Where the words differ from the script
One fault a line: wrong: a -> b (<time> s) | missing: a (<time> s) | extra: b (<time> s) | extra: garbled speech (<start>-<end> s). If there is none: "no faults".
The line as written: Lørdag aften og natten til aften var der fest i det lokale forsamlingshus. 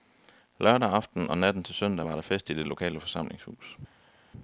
wrong: aften -> søndag (1.8 s)